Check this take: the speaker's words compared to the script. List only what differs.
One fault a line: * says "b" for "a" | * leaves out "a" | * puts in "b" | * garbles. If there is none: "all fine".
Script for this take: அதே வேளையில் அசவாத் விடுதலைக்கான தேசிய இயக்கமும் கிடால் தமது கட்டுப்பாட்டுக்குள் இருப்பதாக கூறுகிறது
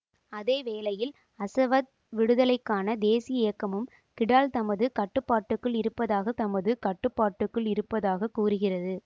* puts in "தமது கட்டுப்பாட்டுக்குள் இருப்பதாக"